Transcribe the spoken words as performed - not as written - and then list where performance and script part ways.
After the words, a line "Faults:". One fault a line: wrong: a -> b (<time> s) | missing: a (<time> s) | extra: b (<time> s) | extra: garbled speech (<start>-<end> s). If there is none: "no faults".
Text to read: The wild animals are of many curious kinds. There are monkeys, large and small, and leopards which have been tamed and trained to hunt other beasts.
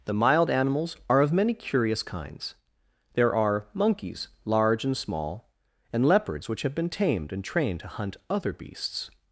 The mild animals are of many curious kinds. There are monkeys, large and small, and leopards which have been tamed and trained to hunt other beasts.
Faults:
wrong: wild -> mild (0.1 s)